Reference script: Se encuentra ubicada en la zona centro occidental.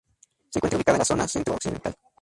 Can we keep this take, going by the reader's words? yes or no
yes